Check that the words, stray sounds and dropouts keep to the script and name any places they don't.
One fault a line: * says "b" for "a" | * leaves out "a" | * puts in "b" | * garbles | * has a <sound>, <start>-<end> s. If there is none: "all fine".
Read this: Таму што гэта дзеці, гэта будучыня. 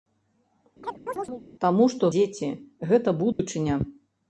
* has a chirp, 0.8-1.4 s
* leaves out "гэта"
* has a dropout, 3.3-3.4 s